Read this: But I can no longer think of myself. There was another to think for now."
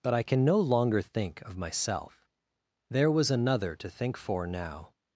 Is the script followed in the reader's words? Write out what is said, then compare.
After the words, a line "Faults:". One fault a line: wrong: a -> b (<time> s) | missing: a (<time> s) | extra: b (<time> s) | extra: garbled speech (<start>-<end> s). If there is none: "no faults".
But I can no longer think of myself. There was another to think for now."
Faults:
no faults